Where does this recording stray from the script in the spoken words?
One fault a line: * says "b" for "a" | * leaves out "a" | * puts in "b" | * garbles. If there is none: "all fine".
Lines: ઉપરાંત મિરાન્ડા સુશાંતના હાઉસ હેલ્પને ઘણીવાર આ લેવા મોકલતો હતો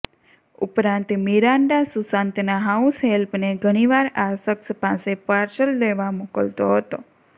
* puts in "શખ્સ પાસે પાર્સલ"